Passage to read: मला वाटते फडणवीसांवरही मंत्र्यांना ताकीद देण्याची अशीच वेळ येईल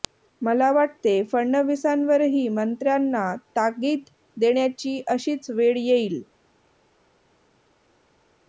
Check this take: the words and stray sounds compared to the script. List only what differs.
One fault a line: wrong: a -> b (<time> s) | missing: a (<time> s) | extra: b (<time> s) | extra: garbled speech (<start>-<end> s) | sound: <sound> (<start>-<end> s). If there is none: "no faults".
no faults